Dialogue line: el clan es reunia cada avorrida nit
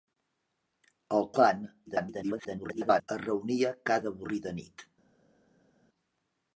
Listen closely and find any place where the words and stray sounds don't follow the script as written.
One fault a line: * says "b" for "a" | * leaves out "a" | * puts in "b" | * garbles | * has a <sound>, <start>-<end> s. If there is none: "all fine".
* garbles